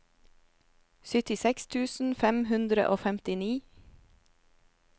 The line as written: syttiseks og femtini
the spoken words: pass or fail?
fail